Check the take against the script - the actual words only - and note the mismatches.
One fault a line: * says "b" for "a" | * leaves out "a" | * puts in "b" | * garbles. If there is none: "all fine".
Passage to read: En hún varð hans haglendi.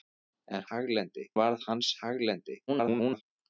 * says "haglendi" for "hún"
* garbles